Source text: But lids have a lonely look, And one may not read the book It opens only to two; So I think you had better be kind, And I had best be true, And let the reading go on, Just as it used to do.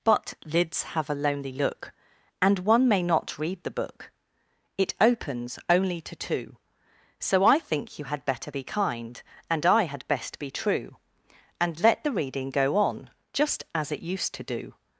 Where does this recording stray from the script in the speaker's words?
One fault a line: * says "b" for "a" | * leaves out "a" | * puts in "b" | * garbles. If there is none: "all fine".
all fine